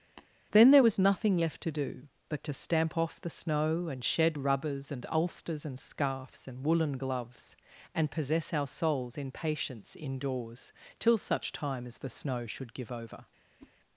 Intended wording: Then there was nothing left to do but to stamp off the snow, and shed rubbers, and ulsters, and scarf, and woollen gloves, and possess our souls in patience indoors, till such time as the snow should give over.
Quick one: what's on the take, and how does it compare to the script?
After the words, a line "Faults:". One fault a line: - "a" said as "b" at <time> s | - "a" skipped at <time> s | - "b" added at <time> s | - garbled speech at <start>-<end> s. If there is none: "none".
Then there was nothing left to do but to stamp off the snow, and shed rubbers, and ulsters, and scarfs, and woollen gloves, and possess our souls in patience indoors, till such time as the snow should give over.
Faults:
- "scarf" said as "scarfs" at 5.8 s